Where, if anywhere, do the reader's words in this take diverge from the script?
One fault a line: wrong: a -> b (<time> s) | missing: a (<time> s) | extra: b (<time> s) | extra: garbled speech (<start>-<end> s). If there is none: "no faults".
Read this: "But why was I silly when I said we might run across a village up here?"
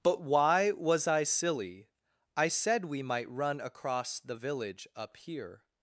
missing: when (1.9 s)
wrong: a -> the (4.2 s)